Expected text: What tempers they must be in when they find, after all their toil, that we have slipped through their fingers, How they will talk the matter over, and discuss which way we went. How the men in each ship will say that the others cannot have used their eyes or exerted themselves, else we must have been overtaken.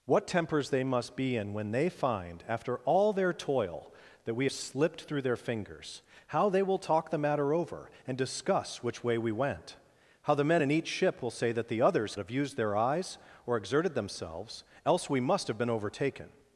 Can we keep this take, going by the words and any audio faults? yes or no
no